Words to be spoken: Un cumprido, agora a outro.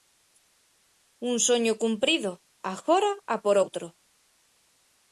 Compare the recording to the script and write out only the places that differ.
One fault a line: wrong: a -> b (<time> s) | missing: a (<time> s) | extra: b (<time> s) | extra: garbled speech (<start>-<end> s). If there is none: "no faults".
extra: soño (1.5 s)
extra: por (3.4 s)